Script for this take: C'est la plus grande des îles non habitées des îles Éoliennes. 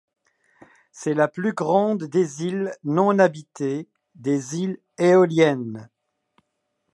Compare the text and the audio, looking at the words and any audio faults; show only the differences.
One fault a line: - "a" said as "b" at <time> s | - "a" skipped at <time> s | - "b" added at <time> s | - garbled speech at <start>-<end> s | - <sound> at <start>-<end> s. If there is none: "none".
none